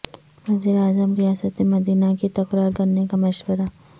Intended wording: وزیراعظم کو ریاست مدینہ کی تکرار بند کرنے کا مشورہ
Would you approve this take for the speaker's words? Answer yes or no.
no